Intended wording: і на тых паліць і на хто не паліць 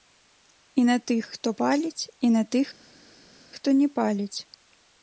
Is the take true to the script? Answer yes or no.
no